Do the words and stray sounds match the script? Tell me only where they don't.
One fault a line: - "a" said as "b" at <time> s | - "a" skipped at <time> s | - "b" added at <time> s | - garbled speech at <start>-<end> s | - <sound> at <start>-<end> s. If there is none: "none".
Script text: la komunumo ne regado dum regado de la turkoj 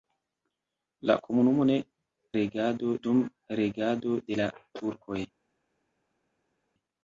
none